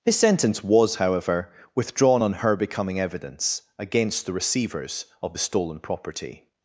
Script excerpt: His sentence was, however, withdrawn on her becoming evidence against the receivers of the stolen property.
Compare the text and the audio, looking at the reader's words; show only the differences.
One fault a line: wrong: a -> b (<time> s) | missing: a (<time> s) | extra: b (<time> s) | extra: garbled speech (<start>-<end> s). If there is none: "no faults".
no faults